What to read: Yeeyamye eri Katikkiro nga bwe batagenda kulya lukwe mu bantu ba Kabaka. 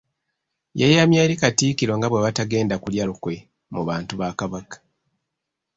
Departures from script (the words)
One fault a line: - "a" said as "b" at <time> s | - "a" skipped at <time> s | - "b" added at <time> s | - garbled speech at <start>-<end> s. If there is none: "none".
none